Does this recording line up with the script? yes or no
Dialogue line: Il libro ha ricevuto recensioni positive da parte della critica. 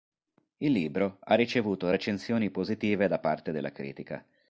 yes